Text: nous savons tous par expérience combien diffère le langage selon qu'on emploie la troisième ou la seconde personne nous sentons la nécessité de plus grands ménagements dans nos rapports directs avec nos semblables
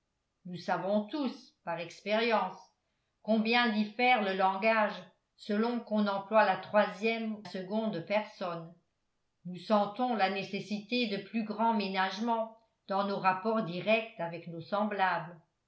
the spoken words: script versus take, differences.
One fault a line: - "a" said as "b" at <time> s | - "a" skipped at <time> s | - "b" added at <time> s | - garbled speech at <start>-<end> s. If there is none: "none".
- "ou la" skipped at 7.4 s